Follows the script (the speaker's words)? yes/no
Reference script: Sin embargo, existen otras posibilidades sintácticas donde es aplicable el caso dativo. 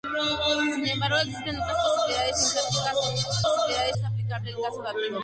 no